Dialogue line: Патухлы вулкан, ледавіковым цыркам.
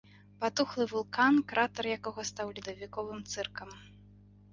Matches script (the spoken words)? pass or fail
fail